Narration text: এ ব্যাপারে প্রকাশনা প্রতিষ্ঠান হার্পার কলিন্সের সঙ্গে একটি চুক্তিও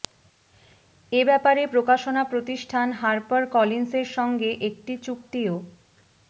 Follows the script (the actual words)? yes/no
yes